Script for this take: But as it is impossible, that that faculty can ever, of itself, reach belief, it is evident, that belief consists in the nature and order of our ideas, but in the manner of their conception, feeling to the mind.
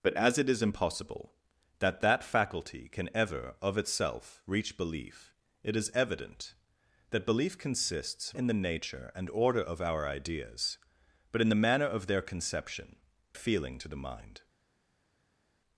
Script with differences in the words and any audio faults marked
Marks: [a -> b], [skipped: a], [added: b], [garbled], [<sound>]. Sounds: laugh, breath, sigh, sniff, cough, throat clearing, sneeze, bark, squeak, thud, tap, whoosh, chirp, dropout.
But as it is impossible, that that faculty can ever, of itself, reach belief, it is evident, that belief consists in the nature and order of our ideas, but in the manner of their conception, feeling to the mind.